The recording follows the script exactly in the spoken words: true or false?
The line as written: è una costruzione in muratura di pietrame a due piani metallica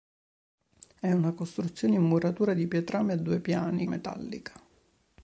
true